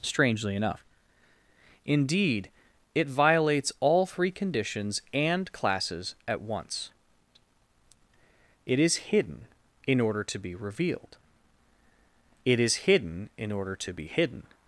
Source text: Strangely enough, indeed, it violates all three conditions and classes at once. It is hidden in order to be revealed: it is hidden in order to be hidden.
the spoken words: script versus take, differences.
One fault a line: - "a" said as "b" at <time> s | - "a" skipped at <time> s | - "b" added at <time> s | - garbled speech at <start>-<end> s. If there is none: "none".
none